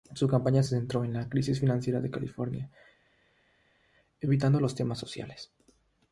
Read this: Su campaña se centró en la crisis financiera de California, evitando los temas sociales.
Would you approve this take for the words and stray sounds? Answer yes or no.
yes